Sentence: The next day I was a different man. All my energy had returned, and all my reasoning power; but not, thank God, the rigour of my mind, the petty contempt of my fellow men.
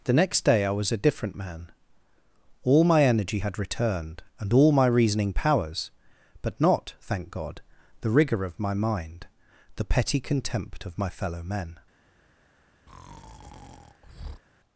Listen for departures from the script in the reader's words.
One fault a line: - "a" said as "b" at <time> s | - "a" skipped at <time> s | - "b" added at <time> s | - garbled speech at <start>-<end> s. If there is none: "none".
- "power" said as "powers" at 5.3 s